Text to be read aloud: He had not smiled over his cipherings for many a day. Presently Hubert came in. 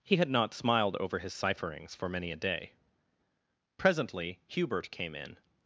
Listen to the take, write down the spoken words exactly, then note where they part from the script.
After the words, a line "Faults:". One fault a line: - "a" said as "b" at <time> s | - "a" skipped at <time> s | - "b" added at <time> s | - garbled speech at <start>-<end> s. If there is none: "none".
He had not smiled over his cipherings for many a day. Presently Hubert came in.
Faults:
none